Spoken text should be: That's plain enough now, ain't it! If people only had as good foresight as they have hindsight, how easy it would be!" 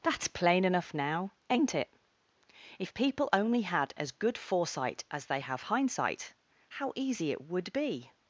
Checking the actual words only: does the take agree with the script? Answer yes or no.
yes